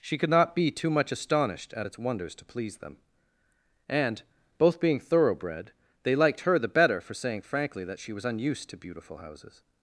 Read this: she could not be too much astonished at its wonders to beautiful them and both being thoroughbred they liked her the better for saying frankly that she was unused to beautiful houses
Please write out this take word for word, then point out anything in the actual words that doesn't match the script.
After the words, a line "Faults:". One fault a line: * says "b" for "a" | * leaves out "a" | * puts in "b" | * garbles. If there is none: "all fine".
she could not be too much astonished at its wonders to please them and both being thoroughbred they liked her the better for saying frankly that she was unused to beautiful houses
Faults:
* says "please" for "beautiful"